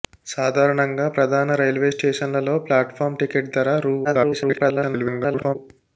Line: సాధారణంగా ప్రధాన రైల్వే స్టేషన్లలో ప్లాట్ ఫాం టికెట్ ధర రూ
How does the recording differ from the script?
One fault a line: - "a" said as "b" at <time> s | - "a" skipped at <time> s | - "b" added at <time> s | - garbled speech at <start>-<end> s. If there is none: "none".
- garbled speech at 4.0-5.6 s